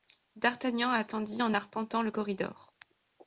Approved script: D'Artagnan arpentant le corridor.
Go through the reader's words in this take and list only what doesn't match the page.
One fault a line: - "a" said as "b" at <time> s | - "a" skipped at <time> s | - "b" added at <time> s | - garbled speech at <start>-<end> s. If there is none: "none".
- "attendit en" added at 0.9 s